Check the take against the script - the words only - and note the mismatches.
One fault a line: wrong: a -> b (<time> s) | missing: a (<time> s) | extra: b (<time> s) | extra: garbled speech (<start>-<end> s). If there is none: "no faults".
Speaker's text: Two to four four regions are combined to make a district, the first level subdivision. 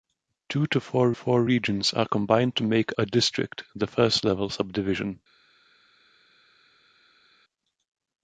no faults